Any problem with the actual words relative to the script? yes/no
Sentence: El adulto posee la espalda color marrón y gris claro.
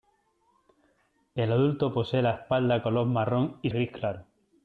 no